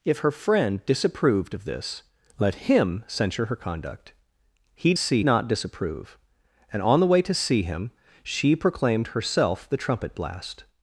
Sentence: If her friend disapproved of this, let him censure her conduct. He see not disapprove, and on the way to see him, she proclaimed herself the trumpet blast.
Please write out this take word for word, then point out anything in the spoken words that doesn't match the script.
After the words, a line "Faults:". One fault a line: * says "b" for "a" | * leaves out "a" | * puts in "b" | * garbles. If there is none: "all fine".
If her friend disapproved of this, let him censure her conduct. He see not disapprove, and on the way to see him, she proclaimed herself the trumpet blast.
Faults:
all fine